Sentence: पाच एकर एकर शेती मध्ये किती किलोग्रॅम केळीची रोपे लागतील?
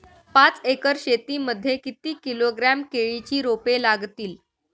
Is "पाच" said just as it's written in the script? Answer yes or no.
yes